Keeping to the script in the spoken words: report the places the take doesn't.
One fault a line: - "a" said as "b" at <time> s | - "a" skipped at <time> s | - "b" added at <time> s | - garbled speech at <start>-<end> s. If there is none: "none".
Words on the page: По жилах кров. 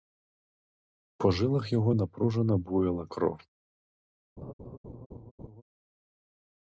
- "його напружено буяла" added at 1.7 s